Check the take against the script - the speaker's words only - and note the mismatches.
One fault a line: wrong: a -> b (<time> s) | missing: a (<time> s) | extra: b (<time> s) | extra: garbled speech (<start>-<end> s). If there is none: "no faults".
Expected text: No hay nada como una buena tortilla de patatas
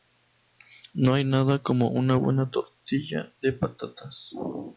no faults